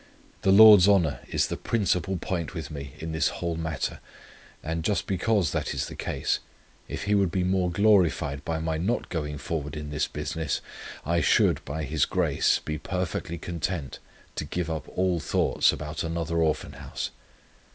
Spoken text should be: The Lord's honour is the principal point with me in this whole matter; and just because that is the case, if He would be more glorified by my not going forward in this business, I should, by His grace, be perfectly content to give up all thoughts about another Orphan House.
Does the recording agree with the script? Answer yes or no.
yes